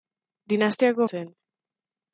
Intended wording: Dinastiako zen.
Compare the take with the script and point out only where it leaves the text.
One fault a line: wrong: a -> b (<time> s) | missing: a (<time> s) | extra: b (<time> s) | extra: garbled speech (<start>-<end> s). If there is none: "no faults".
no faults